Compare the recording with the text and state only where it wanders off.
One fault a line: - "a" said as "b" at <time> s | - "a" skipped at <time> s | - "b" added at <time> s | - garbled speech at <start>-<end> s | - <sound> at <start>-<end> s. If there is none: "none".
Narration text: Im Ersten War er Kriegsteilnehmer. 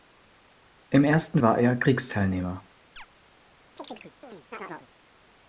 - chirp at 3.0-3.1 s
- chirp at 3.8-4.9 s